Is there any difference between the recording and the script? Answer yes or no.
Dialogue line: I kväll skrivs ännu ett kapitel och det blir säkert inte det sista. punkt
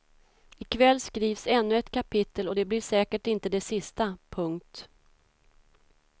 no